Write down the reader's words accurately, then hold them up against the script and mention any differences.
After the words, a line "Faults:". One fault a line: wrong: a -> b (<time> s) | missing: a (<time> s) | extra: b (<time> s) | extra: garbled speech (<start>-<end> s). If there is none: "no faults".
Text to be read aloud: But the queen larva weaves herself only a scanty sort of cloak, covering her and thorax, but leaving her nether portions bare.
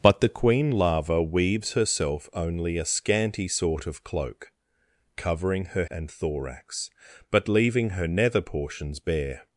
But the queen larva weaves herself only a scanty sort of cloak, covering her and thorax, but leaving her nether portions bare.
Faults:
no faults